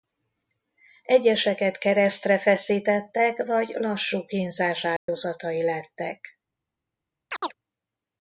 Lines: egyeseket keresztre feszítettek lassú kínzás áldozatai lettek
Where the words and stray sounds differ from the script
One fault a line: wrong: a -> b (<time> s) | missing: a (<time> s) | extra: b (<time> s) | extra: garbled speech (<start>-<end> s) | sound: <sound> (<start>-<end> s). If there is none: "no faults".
extra: vagy (3.5 s)
sound: dropout (5.0-5.1 s)
sound: chirp (7.3-7.5 s)